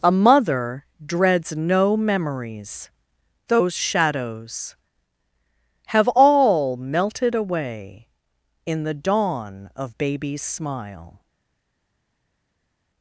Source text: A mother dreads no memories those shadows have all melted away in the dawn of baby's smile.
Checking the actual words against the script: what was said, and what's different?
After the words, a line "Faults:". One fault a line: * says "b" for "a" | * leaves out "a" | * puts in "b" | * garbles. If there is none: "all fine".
A mother dreads no memories those shadows have all melted away in the dawn of baby's smile.
Faults:
all fine